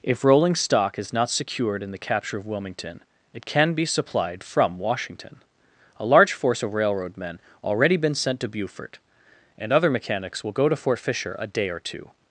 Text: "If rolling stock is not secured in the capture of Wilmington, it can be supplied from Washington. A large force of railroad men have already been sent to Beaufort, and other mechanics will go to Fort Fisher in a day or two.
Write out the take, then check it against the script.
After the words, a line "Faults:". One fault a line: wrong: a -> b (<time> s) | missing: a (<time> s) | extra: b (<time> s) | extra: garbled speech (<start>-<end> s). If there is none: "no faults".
"If rolling stock is not secured in the capture of Wilmington, it can be supplied from Washington. A large force of railroad men already been sent to Beaufort, and other mechanics will go to Fort Fisher a day or two.
Faults:
missing: have (7.4 s)
missing: in (11.3 s)